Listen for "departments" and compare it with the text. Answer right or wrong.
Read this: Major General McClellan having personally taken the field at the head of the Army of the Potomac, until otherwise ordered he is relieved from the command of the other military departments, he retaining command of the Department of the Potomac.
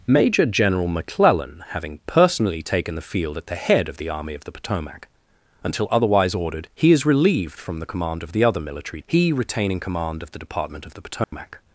wrong